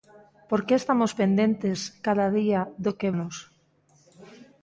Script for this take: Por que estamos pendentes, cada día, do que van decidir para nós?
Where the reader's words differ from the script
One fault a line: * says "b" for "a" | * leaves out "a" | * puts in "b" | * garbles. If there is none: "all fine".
* leaves out "van decidir para"